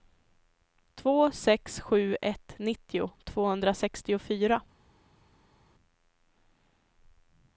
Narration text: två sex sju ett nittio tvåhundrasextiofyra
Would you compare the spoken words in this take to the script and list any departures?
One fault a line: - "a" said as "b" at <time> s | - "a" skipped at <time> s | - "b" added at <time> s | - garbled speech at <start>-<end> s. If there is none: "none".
none